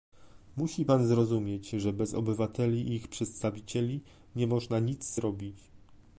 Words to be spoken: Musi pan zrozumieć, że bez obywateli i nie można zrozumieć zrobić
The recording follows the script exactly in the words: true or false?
false